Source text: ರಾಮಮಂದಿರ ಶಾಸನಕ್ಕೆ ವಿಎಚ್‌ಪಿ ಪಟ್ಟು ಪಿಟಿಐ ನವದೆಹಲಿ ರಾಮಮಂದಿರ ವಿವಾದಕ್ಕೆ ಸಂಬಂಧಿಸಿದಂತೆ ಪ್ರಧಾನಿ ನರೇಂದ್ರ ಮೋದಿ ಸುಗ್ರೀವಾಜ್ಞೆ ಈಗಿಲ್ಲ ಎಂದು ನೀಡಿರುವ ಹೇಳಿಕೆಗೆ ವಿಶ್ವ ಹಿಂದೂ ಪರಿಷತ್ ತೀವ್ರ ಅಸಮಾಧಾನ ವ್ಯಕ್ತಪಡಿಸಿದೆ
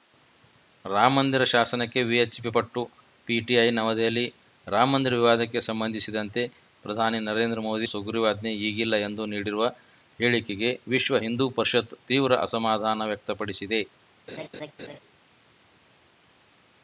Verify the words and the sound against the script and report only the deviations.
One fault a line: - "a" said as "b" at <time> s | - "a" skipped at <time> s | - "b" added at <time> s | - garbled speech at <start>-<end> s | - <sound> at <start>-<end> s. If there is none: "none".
- laugh at 14.3-15.0 s